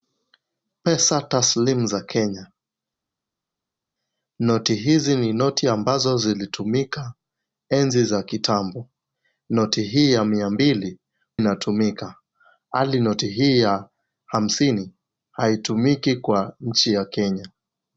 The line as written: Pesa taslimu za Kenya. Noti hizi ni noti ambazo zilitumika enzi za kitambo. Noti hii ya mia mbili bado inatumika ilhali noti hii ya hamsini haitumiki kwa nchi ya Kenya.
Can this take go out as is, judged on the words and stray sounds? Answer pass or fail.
fail